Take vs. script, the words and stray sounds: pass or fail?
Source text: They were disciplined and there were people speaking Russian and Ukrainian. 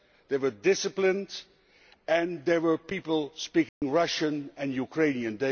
fail